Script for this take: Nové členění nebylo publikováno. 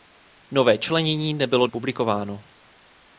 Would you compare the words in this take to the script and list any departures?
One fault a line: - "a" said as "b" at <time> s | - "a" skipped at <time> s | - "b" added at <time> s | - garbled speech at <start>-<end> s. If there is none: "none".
none